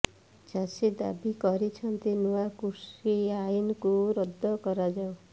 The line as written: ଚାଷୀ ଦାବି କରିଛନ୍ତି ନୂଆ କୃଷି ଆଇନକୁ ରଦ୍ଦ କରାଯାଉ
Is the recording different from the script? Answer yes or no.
no